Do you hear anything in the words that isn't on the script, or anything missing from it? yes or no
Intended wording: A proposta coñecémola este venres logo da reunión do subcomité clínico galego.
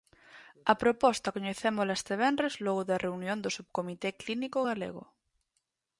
no